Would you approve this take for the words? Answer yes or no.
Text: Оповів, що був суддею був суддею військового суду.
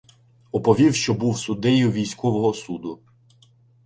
no